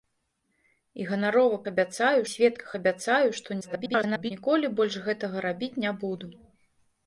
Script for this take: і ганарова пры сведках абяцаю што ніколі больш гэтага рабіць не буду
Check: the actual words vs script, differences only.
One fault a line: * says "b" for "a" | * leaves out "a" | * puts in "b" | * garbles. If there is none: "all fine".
* says "абяцаю" for "пры"
* garbles